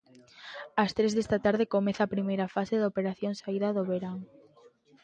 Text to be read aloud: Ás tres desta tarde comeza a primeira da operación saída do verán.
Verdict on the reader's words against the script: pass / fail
fail